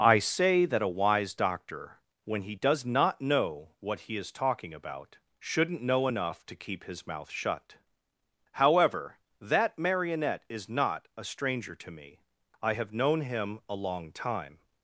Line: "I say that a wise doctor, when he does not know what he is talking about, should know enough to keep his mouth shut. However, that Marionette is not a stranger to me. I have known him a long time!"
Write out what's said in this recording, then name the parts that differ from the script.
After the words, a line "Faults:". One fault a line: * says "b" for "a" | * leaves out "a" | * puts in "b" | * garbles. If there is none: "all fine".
"I say that a wise doctor, when he does not know what he is talking about, shouldn't know enough to keep his mouth shut. However, that Marionette is not a stranger to me. I have known him a long time!"
Faults:
* says "shouldn't" for "should"